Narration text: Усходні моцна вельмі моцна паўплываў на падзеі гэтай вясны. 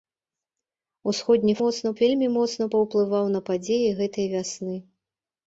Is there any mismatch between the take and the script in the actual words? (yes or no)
no